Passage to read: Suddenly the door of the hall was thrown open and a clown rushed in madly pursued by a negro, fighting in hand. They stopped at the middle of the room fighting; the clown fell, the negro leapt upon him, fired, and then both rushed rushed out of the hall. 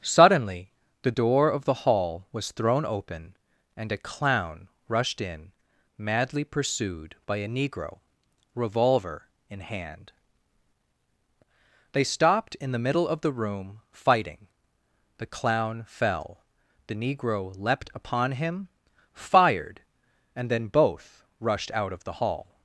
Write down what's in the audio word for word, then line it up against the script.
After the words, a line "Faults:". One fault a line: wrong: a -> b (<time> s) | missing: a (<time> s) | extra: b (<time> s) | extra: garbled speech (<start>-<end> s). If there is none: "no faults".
Suddenly the door of the hall was thrown open and a clown rushed in madly pursued by a negro, revolver in hand. They stopped in the middle of the room fighting; the clown fell, the negro leapt upon him, fired, and then both rushed out of the hall.
Faults:
wrong: fighting -> revolver (8.5 s)
wrong: at -> in (12.6 s)
missing: rushed (21.7 s)